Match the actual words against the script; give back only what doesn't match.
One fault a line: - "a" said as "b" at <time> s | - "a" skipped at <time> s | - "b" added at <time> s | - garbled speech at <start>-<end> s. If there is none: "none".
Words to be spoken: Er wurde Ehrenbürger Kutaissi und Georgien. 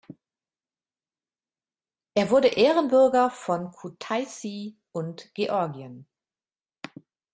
- "von" added at 3.3 s